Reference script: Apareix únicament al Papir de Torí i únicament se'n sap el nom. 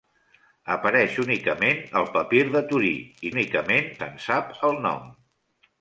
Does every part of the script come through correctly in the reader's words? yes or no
yes